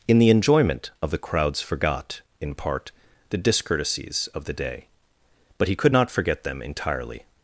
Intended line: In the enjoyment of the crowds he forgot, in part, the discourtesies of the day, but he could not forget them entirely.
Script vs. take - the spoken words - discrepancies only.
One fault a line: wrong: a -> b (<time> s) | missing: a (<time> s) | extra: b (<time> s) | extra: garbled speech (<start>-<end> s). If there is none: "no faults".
missing: he (1.6 s)